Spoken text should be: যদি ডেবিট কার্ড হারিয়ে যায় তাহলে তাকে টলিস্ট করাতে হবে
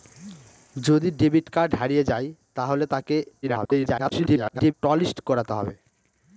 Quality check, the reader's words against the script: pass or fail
fail